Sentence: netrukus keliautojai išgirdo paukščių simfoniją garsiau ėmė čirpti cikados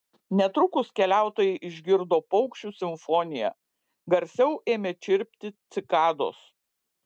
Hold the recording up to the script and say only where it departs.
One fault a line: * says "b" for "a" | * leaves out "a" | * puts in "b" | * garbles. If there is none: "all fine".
all fine